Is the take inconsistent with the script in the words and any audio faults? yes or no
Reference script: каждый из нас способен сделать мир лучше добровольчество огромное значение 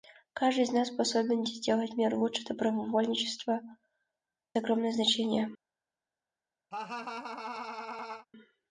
yes